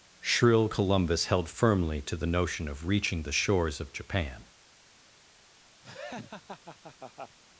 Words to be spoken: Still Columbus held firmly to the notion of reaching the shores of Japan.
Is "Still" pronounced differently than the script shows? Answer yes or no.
yes